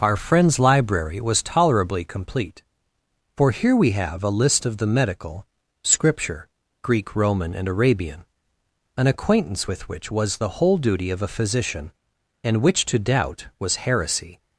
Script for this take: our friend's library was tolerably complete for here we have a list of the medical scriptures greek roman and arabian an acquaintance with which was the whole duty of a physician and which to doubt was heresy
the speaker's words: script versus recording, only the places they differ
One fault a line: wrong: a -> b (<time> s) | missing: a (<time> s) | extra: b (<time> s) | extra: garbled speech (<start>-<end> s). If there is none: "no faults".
wrong: scriptures -> scripture (5.8 s)